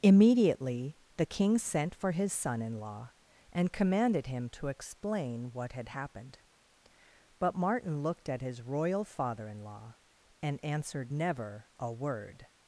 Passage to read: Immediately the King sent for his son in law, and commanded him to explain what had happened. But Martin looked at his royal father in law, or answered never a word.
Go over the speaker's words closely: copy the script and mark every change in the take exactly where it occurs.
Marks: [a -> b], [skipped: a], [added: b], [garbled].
Immediately the King sent for his son in law, and commanded him to explain what had happened. But Martin looked at his royal father in law, [or -> and] answered never a word.